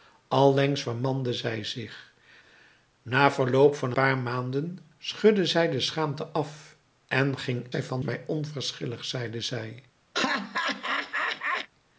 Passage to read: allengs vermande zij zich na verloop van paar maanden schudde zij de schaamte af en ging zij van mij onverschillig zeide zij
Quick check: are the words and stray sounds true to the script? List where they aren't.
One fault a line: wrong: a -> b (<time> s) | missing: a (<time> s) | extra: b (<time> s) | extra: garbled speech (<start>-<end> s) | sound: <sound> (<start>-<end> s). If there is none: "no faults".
sound: laugh (10.1-11.7 s)